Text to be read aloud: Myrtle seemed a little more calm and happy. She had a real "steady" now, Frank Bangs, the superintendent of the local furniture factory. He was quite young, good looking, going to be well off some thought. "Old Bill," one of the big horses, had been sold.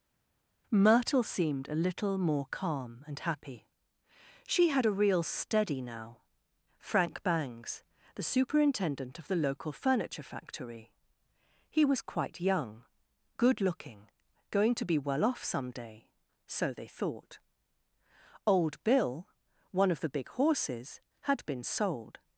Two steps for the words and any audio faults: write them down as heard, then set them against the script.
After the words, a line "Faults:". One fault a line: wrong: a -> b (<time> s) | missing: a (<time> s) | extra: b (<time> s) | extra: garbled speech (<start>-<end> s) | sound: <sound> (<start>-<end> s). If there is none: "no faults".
Myrtle seemed a little more calm and happy. She had a real "steady" now, Frank Bangs, the superintendent of the local furniture factory. He was quite young, good looking, going to be well off some day, so they thought. "Old Bill," one of the big horses, had been sold.
Faults:
extra: day so they (15.7 s)